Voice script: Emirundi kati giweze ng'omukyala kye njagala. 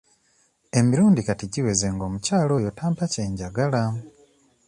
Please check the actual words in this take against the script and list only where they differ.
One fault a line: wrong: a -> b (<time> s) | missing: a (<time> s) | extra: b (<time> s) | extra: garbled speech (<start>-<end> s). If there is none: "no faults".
extra: oyo tampa (2.6 s)